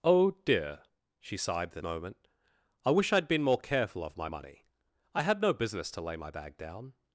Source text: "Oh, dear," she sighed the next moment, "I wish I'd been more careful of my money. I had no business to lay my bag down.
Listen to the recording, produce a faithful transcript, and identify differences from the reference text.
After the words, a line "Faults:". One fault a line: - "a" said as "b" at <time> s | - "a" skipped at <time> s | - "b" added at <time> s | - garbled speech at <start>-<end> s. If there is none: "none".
"Oh, dear," she sighed the moment, "I wish I'd been more careful of my money. I had no business to lay my bag down.
Faults:
- "next" skipped at 1.8 s